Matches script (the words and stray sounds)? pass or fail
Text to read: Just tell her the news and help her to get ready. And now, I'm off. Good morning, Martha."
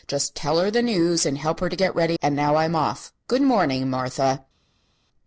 pass